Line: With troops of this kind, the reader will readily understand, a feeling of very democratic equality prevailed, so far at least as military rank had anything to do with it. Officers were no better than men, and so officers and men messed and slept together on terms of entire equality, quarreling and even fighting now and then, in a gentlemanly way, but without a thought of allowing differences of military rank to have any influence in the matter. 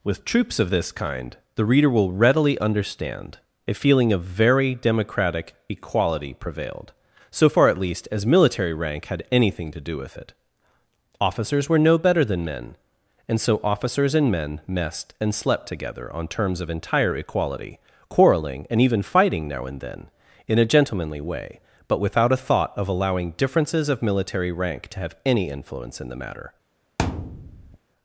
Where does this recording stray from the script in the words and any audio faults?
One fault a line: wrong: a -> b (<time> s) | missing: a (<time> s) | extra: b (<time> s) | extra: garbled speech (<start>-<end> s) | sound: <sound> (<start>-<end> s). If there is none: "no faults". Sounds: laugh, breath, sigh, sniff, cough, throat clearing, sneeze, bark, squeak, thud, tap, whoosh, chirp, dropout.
sound: thud (27.0-27.8 s)